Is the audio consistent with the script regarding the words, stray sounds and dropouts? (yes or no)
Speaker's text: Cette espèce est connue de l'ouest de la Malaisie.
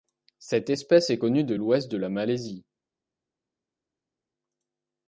yes